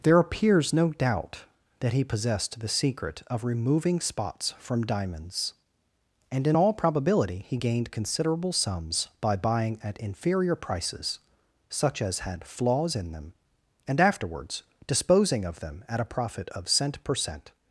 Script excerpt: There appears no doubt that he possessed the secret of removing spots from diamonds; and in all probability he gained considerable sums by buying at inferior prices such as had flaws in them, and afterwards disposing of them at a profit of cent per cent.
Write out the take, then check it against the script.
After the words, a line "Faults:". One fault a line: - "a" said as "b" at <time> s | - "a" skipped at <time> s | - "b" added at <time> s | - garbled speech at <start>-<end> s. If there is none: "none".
There appears no doubt that he possessed the secret of removing spots from diamonds; and in all probability he gained considerable sums by buying at inferior prices such as had flaws in them, and afterwards disposing of them at a profit of cent per cent.
Faults:
none